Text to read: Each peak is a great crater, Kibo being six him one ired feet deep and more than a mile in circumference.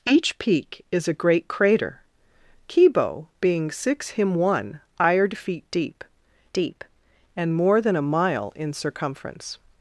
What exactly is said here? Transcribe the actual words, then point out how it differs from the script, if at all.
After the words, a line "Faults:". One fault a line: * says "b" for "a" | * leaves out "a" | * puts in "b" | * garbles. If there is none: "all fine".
Each peak is a great crater, Kibo being six him one ired feet deep deep and more than a mile in circumference.
Faults:
* puts in "deep"